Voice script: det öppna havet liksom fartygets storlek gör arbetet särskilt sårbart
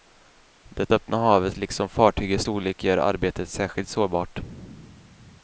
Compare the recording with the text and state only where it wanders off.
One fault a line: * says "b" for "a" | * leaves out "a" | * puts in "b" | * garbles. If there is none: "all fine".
all fine